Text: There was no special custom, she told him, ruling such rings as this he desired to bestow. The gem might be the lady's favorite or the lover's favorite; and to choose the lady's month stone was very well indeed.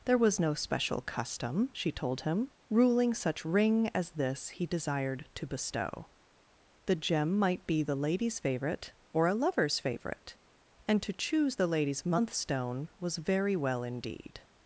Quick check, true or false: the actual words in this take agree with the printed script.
false